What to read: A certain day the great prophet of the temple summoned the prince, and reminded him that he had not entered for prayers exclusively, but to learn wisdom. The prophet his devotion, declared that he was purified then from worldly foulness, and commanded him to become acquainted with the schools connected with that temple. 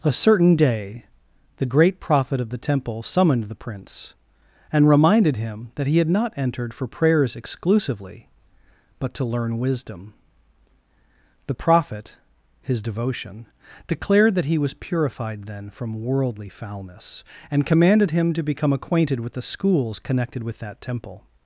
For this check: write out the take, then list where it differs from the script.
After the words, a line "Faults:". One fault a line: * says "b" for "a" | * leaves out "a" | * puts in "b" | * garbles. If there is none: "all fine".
A certain day the great prophet of the temple summoned the prince, and reminded him that he had not entered for prayers exclusively, but to learn wisdom. The prophet his devotion, declared that he was purified then from worldly foulness, and commanded him to become acquainted with the schools connected with that temple.
Faults:
all fine